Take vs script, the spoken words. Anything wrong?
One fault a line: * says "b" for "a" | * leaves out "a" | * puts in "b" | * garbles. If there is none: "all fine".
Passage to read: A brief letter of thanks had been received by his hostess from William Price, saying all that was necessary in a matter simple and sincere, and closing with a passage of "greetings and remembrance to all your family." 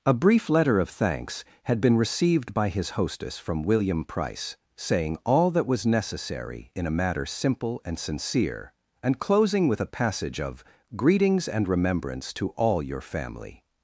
all fine